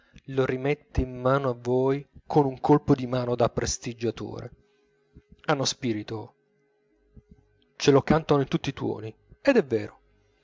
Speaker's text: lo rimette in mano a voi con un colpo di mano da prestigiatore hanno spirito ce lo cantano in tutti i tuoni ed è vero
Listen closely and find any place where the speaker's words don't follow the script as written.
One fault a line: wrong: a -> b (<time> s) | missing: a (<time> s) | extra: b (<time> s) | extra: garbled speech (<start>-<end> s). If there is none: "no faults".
no faults